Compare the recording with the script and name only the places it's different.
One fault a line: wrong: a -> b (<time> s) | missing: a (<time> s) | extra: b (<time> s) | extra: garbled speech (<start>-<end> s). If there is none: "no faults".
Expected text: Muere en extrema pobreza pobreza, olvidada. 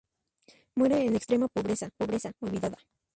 no faults